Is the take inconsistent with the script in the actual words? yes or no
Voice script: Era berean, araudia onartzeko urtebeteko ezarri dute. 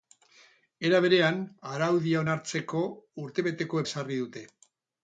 no